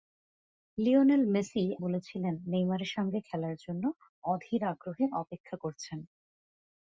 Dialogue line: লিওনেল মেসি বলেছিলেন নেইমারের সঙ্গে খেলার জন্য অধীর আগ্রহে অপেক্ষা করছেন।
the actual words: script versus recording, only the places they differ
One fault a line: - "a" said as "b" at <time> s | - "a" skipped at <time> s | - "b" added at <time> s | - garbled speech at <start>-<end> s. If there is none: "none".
none